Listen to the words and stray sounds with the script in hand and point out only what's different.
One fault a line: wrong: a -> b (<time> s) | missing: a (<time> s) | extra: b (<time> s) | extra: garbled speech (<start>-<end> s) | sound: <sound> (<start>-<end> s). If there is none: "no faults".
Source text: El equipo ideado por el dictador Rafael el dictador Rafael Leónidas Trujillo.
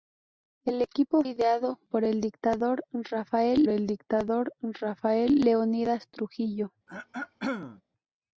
sound: throat clearing (6.9-7.8 s)